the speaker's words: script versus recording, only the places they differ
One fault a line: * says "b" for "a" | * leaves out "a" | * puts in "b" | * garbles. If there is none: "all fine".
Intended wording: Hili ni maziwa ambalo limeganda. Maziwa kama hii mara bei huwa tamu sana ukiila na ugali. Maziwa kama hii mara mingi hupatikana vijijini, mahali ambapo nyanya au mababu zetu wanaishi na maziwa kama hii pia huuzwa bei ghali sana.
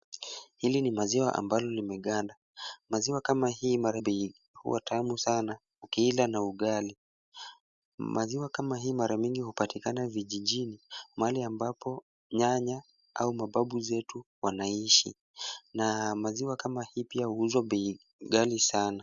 all fine